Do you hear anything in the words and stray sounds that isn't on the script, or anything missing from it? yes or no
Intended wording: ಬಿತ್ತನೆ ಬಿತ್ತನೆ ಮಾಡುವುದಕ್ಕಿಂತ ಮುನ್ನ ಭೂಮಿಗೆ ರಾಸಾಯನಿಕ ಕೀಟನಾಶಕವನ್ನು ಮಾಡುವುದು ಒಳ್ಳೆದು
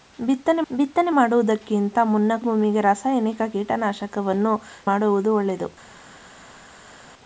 no